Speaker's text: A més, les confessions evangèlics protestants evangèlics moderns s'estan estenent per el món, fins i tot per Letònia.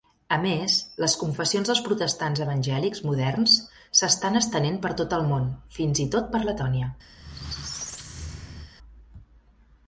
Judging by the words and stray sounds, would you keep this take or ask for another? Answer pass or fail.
fail